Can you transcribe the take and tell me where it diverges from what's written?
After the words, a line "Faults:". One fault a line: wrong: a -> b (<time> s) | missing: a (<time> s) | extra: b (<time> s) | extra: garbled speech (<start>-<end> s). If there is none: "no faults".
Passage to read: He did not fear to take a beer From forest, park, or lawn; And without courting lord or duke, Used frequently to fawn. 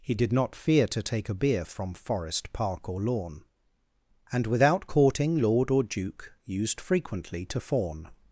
He did not fear to take a beer From forest, park, or lawn; And without courting lord or duke, Used frequently to fawn.
Faults:
no faults